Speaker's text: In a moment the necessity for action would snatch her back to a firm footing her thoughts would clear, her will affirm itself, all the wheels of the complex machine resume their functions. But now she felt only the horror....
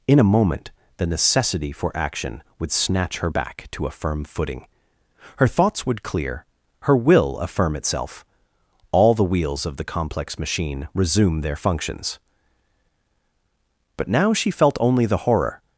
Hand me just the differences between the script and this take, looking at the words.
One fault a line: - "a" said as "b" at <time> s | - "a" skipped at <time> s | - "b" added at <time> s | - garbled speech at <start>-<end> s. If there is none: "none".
none